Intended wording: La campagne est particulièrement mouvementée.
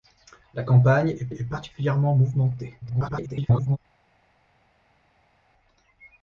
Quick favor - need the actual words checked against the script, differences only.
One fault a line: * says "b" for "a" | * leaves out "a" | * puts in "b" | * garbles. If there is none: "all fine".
* puts in "est"
* garbles